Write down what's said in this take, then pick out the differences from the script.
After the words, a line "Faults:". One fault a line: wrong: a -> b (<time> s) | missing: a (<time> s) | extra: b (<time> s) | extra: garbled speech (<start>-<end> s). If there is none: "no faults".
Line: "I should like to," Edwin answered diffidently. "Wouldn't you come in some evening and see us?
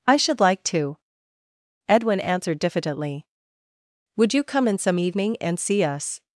"I should like to," Edwin answered diffidently. "Would you come in some evening and see us?
Faults:
wrong: Wouldn't -> Would (4.1 s)